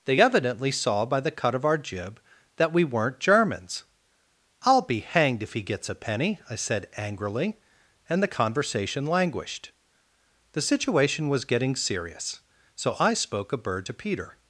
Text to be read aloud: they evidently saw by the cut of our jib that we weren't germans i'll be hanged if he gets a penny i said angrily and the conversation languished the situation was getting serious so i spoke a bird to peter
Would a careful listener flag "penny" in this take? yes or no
no